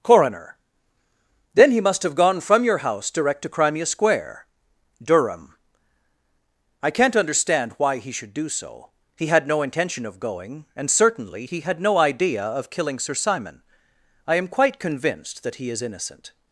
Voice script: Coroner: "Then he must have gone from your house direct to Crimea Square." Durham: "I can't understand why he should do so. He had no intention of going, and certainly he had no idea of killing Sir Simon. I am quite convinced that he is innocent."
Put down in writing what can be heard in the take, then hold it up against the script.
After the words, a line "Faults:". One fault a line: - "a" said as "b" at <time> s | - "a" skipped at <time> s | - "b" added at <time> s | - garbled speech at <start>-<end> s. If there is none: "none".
Coroner: "Then he must have gone from your house direct to Crimea Square." Durham: "I can't understand why he should do so. He had no intention of going, and certainly he had no idea of killing Sir Simon. I am quite convinced that he is innocent."
Faults:
none